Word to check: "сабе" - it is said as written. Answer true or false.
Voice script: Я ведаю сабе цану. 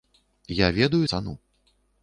false